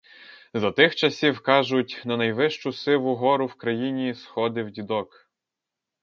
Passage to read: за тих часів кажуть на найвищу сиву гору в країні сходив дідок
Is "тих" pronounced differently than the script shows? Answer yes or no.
no